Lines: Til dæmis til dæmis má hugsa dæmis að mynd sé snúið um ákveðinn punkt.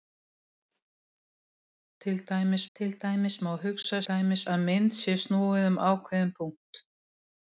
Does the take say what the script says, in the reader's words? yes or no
yes